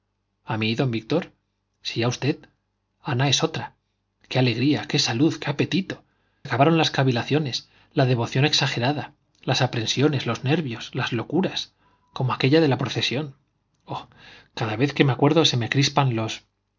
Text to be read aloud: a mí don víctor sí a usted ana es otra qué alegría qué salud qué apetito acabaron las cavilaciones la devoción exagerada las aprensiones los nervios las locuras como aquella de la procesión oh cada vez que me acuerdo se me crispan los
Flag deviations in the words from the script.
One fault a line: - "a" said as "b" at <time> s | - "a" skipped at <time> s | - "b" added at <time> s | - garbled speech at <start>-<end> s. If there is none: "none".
none